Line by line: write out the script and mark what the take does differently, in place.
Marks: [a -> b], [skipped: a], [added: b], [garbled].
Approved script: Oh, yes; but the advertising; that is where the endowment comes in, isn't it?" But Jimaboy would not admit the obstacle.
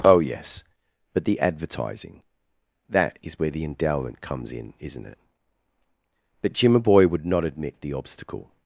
Oh, yes; but the advertising; that is where the endowment comes in, isn't it?" But Jimaboy would not admit the obstacle.